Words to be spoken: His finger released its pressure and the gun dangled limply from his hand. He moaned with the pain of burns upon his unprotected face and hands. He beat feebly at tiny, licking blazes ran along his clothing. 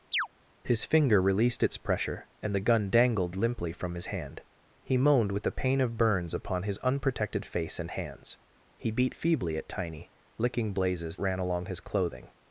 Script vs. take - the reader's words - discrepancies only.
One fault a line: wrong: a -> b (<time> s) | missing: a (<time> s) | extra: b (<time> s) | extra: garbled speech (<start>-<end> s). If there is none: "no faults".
no faults